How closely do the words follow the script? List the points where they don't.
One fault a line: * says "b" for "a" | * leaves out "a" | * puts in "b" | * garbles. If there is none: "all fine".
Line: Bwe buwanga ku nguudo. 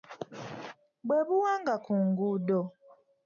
all fine